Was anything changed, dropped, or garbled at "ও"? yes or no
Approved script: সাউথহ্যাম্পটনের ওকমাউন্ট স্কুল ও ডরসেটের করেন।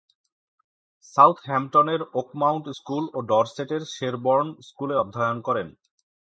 no